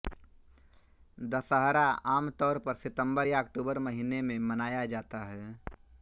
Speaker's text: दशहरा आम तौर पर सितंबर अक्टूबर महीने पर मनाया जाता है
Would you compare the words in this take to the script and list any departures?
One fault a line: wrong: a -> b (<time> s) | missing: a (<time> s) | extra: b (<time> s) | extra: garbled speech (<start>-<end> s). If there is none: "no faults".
extra: या (3.2 s)
wrong: पर -> में (4.2 s)